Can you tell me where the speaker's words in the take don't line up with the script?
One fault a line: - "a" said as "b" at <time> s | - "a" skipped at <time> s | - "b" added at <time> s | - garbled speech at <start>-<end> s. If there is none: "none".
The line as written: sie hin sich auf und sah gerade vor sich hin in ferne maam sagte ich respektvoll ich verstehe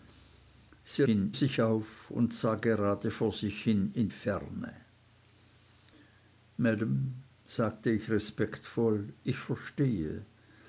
none